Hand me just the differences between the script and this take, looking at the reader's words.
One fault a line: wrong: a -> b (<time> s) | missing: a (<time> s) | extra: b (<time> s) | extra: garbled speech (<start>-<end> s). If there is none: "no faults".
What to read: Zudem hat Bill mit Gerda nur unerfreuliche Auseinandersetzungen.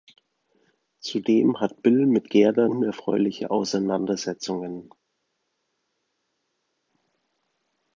missing: nur (2.7 s)